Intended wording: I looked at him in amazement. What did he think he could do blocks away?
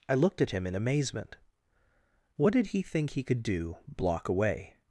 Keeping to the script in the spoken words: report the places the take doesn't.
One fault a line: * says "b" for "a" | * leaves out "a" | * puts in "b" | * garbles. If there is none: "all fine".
* says "block" for "blocks"